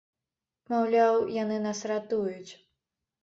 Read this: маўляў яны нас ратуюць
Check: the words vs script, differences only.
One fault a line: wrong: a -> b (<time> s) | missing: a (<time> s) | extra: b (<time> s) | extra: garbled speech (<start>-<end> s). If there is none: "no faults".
no faults